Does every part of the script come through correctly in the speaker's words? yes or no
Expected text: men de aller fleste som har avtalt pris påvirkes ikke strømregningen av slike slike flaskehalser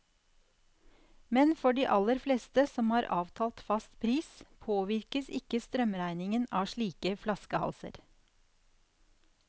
no